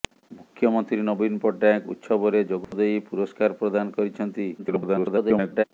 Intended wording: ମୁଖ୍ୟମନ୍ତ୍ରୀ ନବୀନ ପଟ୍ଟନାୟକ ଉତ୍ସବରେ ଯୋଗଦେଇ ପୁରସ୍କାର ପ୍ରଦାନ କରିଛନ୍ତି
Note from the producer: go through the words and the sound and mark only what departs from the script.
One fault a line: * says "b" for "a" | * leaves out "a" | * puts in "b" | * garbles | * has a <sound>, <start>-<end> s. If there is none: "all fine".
* has a dropout, 2.6-2.7 s
* garbles